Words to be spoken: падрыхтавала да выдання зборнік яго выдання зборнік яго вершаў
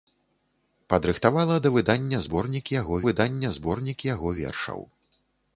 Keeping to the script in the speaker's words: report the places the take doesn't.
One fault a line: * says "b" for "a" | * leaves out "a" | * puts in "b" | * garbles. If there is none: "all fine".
all fine